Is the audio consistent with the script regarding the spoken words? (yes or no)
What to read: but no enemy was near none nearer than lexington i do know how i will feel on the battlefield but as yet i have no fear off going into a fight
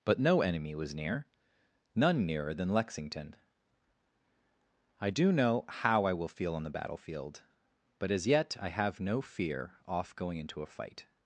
yes